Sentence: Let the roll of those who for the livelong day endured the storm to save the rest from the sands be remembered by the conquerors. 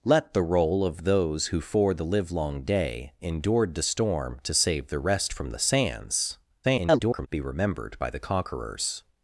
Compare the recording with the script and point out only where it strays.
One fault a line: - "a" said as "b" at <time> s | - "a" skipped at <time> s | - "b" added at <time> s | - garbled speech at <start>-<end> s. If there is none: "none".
- garbled speech at 6.6-7.3 s